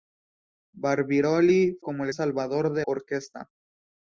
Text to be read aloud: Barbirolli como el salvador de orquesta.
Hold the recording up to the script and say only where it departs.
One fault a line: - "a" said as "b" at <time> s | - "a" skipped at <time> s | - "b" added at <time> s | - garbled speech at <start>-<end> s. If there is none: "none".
none